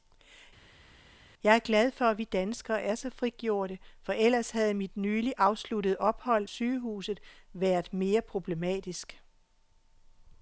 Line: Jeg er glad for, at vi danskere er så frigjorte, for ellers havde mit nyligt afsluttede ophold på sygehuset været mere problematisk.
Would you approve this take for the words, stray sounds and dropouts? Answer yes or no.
no